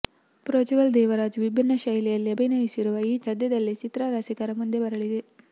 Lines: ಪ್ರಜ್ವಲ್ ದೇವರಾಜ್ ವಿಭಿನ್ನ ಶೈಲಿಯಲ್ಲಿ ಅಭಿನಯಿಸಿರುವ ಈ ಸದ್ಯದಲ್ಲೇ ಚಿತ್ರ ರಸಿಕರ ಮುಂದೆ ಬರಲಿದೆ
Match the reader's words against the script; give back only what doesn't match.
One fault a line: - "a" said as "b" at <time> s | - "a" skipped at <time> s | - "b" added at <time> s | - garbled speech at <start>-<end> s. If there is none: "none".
none